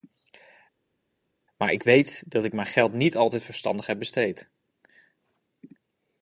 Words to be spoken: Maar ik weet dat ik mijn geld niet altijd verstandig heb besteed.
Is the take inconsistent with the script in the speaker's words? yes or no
no